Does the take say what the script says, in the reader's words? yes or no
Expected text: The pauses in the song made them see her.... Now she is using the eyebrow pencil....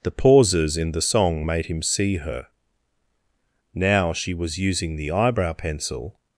no